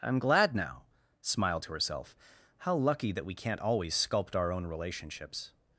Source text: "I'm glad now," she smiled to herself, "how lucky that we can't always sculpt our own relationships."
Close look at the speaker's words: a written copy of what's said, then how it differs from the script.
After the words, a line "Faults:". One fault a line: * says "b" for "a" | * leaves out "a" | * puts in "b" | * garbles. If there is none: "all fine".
"I'm glad now," smiled to herself, "how lucky that we can't always sculpt our own relationships."
Faults:
* leaves out "she"